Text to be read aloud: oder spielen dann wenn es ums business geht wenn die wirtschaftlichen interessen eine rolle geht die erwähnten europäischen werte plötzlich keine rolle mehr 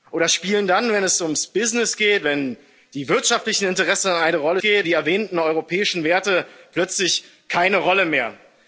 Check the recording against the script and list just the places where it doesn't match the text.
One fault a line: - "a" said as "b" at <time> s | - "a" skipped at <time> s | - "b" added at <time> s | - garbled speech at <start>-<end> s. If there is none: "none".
none